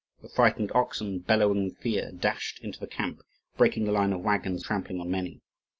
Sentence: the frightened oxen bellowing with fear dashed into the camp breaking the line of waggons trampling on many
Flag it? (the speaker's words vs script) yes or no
no